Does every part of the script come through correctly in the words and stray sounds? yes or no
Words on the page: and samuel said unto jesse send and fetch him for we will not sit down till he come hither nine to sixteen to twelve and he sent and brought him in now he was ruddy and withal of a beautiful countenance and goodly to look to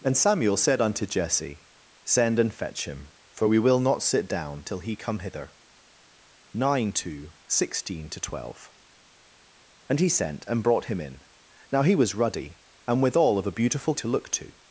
no